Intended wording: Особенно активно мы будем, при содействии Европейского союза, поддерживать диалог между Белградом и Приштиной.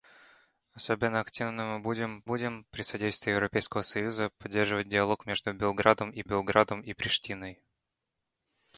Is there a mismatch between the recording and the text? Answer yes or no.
yes